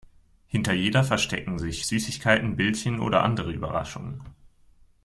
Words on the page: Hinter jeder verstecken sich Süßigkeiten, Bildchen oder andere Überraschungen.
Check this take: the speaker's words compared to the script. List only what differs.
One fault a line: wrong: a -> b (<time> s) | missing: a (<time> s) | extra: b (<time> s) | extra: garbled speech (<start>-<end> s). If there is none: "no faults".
no faults